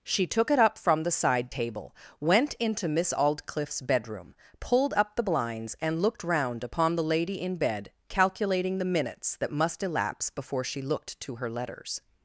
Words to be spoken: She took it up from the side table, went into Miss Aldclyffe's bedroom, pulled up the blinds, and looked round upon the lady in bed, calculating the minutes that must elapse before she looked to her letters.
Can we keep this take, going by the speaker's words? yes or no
yes